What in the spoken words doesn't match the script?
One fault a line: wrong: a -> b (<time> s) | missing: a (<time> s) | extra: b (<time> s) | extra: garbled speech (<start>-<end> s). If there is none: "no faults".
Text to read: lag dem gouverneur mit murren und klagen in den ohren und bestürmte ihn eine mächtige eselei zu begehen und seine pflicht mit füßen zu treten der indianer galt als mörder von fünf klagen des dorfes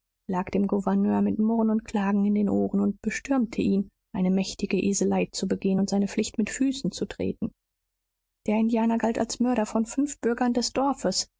wrong: klagen -> bürgern (10.2 s)